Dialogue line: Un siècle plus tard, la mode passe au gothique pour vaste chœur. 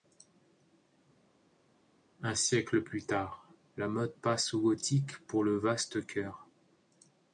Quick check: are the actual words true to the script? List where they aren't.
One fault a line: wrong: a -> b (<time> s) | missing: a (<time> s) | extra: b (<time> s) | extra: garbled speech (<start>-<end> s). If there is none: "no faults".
extra: le (5.4 s)